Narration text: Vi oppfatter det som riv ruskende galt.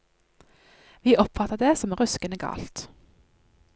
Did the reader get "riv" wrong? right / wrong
wrong